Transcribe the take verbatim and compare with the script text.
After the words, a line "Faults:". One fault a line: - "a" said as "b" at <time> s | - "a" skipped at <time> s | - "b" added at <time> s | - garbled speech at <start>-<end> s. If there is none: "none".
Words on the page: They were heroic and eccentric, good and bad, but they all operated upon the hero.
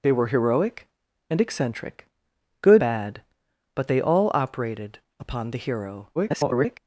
They were heroic and eccentric, good bad, but they all operated upon the hero. [garbled]
Faults:
- "and" skipped at 2.8 s
- garbled speech at 6.2-6.8 s